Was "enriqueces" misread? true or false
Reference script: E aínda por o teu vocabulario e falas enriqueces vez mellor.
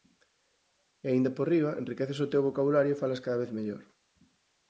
true